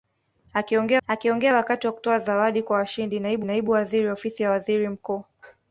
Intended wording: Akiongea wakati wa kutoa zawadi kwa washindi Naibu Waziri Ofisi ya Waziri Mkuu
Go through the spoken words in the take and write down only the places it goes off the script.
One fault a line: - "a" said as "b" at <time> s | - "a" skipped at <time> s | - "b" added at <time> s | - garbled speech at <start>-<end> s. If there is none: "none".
- "akiongea" added at 1.1 s
- "Naibu" added at 3.4 s